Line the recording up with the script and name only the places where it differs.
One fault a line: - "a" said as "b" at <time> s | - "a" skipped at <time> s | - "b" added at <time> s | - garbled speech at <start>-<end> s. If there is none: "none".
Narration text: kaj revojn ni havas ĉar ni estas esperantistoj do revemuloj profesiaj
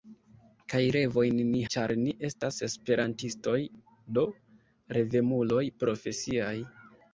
- "havas" skipped at 1.6 s